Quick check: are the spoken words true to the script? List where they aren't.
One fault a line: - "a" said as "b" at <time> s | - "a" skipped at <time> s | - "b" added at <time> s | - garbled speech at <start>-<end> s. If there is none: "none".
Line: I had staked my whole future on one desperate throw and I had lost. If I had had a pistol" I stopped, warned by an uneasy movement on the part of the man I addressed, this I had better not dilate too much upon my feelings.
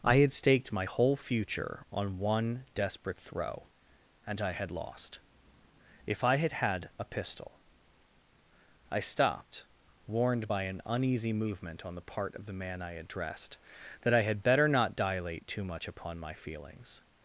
- "this" said as "that" at 14.0 s